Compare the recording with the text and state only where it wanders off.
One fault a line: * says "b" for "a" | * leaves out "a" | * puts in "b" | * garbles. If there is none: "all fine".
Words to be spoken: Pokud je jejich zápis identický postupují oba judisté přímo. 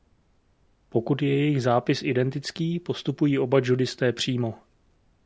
all fine